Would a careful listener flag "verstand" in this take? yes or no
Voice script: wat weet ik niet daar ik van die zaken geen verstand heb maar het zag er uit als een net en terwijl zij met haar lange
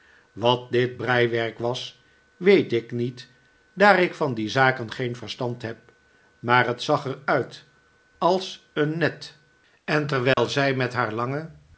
no